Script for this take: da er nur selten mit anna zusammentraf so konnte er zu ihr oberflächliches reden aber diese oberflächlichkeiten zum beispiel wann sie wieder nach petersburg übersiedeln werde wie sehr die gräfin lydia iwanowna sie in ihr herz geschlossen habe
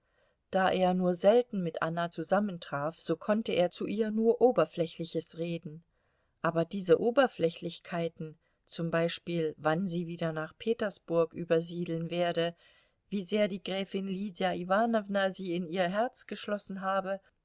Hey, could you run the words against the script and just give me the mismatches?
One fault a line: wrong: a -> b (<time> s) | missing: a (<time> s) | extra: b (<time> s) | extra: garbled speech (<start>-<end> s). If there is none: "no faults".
extra: nur (4.1 s)